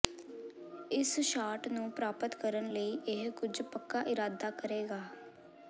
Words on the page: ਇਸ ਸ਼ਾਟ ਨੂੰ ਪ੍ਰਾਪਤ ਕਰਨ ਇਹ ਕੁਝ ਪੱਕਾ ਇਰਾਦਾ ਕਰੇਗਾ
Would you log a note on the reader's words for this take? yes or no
yes